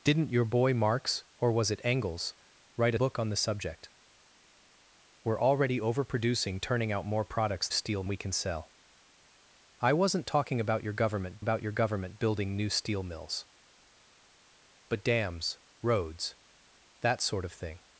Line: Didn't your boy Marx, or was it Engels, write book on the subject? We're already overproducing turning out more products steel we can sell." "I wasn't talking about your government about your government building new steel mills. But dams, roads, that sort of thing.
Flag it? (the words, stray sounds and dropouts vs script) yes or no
no